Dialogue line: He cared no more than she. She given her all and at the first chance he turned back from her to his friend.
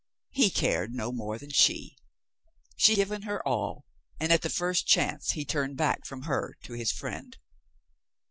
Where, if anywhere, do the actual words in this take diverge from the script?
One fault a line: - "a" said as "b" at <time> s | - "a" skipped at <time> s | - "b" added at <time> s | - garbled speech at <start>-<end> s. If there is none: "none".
none